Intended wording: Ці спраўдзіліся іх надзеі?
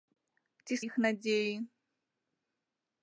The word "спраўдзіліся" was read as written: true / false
false